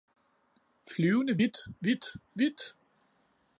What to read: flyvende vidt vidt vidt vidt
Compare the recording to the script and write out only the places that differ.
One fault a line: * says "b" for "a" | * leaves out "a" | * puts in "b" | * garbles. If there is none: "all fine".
* leaves out "vidt"